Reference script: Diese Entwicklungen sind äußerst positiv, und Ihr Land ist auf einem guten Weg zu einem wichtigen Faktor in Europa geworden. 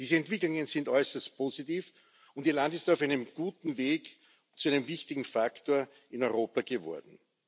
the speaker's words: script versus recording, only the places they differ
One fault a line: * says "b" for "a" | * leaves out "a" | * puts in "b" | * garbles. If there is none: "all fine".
all fine